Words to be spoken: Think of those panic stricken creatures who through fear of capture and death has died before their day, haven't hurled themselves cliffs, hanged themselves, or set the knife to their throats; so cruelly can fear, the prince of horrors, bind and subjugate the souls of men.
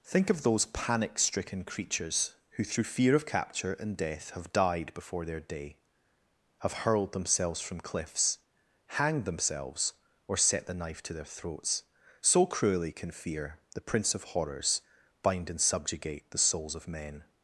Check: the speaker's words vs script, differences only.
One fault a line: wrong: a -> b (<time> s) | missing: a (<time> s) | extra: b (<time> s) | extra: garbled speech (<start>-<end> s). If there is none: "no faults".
wrong: has -> have (4.3 s)
wrong: haven't -> have (6.6 s)
extra: from (7.6 s)